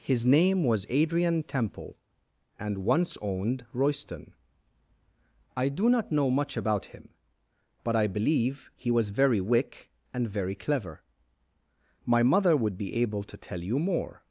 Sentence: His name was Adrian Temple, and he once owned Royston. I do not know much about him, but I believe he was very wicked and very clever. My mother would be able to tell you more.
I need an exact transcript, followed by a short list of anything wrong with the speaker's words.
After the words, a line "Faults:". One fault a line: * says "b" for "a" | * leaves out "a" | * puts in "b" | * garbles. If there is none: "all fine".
His name was Adrian Temple, and once owned Royston. I do not know much about him, but I believe he was very wick and very clever. My mother would be able to tell you more.
Faults:
* leaves out "he"
* says "wick" for "wicked"